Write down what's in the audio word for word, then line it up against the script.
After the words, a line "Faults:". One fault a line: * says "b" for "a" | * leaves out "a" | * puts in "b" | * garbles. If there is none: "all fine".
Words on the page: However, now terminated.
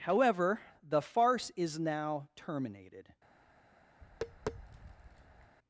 However, the farce is now terminated.
Faults:
* puts in "the farce is"